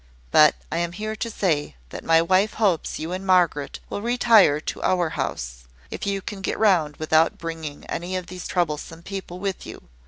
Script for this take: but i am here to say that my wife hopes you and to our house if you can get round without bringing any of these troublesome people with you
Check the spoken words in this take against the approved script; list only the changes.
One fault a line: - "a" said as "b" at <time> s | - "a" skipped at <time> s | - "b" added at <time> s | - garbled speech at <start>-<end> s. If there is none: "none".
- "margaret will retire" added at 3.3 s